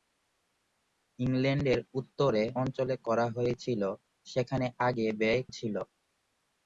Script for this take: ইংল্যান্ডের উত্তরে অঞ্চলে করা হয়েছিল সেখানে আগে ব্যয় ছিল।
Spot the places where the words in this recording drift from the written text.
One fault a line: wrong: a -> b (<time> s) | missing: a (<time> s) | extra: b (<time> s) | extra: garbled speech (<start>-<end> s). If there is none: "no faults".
no faults